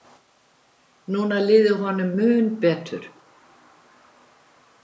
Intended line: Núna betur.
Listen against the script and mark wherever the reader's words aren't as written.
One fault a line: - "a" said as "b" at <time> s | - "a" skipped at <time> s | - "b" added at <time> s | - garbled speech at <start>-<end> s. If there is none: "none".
- "liði honum mun" added at 1.5 s